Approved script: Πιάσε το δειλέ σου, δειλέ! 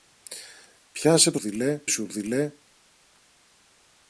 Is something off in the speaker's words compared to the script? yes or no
no